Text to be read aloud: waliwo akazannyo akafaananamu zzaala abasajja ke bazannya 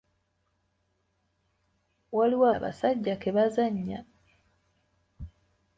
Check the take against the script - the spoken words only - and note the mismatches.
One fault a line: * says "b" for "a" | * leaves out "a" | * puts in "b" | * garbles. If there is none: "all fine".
* leaves out "akazannyo akafaananamu zzaala"